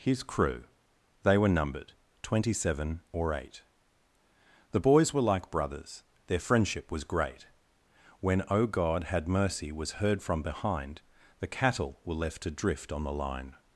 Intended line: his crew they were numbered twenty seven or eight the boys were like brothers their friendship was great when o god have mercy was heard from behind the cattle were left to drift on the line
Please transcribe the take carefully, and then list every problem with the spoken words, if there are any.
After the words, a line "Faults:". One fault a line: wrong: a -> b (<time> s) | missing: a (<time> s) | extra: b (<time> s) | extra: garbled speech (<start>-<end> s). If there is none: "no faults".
his crew they were numbered twenty seven or eight the boys were like brothers their friendship was great when o god had mercy was heard from behind the cattle were left to drift on the line
Faults:
wrong: have -> had (9.0 s)